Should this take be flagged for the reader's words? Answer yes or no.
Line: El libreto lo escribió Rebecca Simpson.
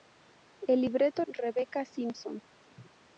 yes